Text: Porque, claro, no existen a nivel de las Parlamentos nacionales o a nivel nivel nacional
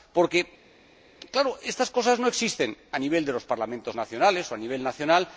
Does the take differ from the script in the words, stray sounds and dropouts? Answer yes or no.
yes